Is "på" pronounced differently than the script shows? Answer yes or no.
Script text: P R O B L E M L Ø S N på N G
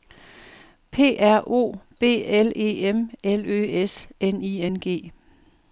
yes